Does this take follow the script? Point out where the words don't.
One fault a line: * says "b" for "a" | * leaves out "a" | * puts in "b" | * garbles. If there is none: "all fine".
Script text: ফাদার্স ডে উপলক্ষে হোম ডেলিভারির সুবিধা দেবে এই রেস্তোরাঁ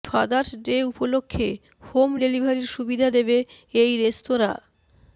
all fine